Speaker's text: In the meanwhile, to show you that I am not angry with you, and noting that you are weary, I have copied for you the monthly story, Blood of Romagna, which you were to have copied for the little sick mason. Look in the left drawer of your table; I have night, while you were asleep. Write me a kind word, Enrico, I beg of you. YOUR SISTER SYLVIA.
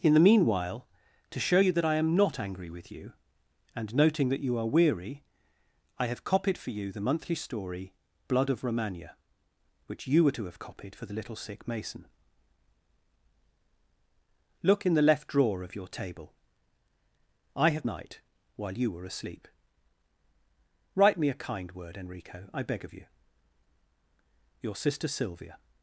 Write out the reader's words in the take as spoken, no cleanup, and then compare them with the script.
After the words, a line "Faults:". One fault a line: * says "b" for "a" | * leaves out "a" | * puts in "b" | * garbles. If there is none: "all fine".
In the meanwhile, to show you that I am not angry with you, and noting that you are weary, I have copied for you the monthly story, Blood of Romagna, which you were to have copied for the little sick mason. Look in the left drawer of your table; I have night, while you were asleep. Write me a kind word, Enrico, I beg of you. YOUR SISTER SYLVIA.
Faults:
all fine